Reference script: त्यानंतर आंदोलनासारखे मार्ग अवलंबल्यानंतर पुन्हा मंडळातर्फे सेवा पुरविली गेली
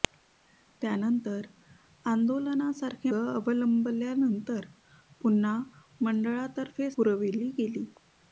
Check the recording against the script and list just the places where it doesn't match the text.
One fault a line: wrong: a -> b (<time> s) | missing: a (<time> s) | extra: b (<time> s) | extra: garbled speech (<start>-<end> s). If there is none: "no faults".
missing: मार्ग (3.1 s)
missing: सेवा (6.9 s)